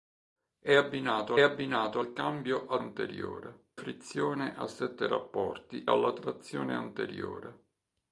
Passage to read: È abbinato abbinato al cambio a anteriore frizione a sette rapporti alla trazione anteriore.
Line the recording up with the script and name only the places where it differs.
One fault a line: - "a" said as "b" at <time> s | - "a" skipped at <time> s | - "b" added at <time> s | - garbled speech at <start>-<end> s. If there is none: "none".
none